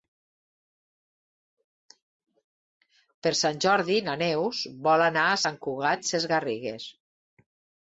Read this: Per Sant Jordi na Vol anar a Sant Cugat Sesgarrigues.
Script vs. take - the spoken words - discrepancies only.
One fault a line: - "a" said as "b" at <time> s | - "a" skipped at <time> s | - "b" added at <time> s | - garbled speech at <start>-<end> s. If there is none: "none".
- "Neus" added at 4.2 s